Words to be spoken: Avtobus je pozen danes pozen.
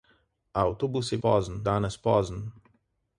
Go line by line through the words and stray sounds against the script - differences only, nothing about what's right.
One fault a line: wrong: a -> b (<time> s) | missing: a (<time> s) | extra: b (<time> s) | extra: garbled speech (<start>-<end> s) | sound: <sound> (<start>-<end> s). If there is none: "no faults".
no faults